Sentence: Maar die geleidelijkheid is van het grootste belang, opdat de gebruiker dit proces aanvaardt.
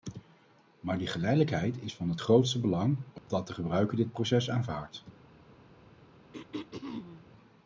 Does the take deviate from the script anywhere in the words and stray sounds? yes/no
yes